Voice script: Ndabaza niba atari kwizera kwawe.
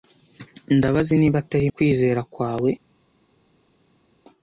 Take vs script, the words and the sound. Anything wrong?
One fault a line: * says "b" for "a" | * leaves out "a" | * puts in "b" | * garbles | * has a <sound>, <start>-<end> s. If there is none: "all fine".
all fine